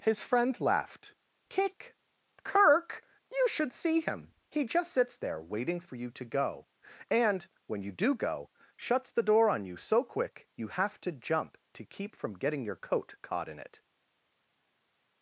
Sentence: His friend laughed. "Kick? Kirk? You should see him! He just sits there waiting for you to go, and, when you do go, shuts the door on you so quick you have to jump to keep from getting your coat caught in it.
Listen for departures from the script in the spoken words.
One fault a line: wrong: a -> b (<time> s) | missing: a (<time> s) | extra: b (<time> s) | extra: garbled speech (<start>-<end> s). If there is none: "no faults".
no faults